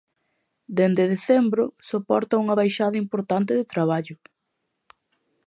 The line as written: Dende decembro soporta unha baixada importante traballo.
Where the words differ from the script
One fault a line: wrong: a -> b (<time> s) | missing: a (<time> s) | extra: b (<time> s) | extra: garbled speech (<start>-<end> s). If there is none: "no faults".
extra: de (3.6 s)